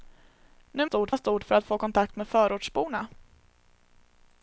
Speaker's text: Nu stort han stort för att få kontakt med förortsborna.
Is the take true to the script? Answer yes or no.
yes